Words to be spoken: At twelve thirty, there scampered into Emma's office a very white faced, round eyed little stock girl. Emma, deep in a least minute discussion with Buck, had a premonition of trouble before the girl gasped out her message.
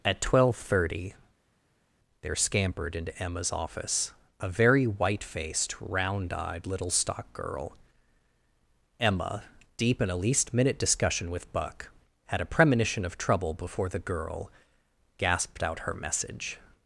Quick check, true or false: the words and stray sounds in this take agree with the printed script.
true